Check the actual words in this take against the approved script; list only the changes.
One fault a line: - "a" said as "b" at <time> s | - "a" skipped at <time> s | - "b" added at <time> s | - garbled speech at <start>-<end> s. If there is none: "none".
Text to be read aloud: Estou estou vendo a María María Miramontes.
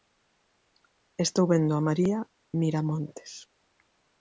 - "estou" skipped at 1.4 s
- "María" skipped at 2.2 s